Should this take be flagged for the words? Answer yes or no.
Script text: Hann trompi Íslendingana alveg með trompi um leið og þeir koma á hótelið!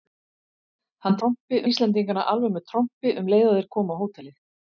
no